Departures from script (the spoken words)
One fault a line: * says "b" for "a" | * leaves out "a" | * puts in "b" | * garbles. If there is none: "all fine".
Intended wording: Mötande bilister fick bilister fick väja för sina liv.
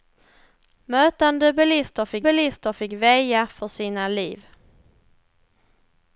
all fine